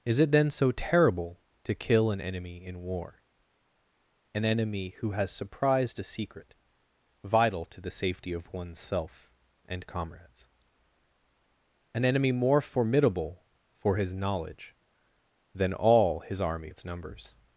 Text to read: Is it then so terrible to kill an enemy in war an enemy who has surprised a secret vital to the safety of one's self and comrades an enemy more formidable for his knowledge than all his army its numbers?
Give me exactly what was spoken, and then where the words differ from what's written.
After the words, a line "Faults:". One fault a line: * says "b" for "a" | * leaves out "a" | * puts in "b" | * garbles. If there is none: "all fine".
Is it then so terrible to kill an enemy in war an enemy who has surprised a secret vital to the safety of one's self and comrades an enemy more formidable for his knowledge than all his army its numbers?
Faults:
all fine